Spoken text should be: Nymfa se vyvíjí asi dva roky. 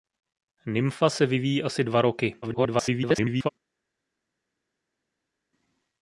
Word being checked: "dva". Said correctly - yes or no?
yes